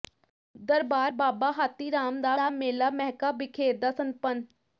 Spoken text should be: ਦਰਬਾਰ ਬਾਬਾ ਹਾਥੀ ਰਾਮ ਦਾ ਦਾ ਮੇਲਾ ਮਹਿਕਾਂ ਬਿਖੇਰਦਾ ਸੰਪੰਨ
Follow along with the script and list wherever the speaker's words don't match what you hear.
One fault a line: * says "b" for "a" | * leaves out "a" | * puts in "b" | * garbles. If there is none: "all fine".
all fine